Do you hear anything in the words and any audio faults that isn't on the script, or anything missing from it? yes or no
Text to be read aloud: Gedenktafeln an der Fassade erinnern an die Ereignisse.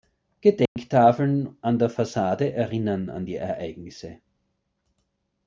yes